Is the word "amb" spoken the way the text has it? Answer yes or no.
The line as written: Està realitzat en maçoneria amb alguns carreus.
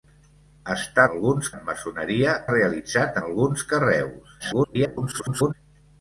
no